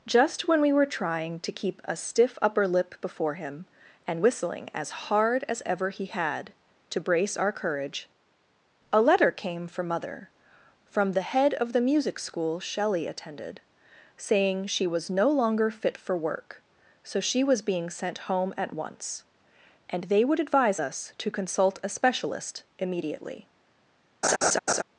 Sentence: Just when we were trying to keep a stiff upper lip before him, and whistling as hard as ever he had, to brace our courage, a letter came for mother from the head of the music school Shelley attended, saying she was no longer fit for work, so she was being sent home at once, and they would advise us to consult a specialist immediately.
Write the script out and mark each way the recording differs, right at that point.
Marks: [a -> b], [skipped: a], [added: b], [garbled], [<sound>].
Just when we were trying to keep a stiff upper lip before him, and whistling as hard as ever he had, to brace our courage, a letter came for mother from the head of the music school Shelley attended, saying she was no longer fit for work, so she was being sent home at once, and they would advise us to consult a specialist immediately. [laugh]